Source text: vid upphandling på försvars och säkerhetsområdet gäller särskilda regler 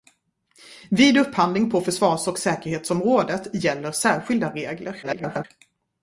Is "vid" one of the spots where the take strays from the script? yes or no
no